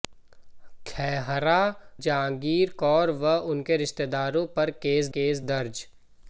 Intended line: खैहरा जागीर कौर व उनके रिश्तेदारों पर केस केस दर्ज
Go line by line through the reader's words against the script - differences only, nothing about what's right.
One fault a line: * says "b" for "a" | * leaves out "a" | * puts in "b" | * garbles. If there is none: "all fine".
all fine